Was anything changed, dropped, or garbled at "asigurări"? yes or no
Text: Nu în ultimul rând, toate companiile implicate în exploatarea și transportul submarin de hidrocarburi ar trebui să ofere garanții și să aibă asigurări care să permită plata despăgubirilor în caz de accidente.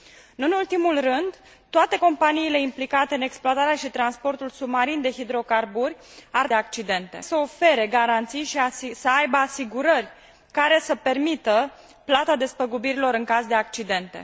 no